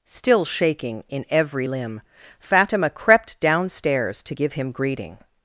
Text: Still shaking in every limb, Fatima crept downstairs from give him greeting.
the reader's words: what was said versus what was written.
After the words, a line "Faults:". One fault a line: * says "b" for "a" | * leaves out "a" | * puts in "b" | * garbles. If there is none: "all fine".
Still shaking in every limb, Fatima crept downstairs to give him greeting.
Faults:
* says "to" for "from"